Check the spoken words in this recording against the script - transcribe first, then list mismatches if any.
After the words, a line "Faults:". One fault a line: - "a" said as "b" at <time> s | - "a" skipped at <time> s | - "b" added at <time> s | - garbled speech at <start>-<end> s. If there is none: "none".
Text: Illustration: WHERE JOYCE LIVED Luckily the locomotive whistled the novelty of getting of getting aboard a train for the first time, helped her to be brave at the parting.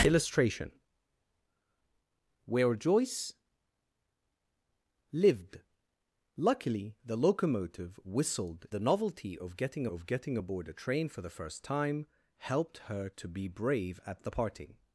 Illustration: WHERE JOYCE LIVED Luckily the locomotive whistled the novelty of getting of getting aboard a train for the first time, helped her to be brave at the parting.
Faults:
none